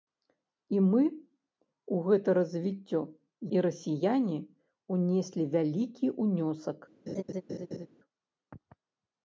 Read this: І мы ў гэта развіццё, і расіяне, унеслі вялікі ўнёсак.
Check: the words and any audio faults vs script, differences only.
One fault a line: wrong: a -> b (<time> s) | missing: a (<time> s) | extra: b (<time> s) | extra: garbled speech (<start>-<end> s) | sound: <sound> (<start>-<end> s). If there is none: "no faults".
sound: laugh (7.1-7.9 s)